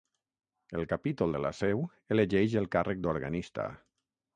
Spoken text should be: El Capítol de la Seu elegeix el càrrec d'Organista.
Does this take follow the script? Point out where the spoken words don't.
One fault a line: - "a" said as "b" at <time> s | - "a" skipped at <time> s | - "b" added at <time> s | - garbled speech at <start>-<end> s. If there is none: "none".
none